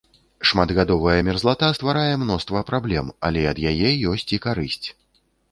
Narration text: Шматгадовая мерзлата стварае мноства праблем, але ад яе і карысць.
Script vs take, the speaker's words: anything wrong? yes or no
yes